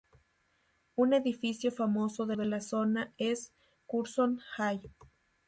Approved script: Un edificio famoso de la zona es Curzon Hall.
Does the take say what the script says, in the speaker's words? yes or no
no